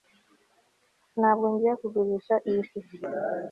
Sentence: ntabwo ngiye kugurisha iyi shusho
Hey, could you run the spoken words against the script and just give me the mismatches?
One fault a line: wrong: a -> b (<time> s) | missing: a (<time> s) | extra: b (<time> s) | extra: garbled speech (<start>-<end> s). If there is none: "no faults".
no faults